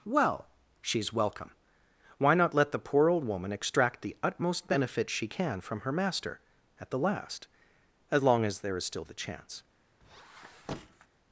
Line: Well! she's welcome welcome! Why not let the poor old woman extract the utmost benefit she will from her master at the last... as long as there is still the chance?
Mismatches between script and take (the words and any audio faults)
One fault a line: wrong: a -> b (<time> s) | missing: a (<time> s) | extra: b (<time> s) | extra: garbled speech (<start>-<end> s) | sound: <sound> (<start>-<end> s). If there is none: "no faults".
missing: welcome (1.5 s)
wrong: will -> can (5.3 s)
sound: squeak (10.0-11.1 s)